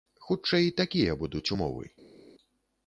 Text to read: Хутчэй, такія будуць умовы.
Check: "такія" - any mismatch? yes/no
no